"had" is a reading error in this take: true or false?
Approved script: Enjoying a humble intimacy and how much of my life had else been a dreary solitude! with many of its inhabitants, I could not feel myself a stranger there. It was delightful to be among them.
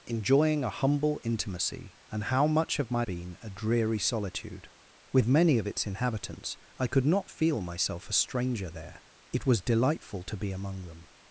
true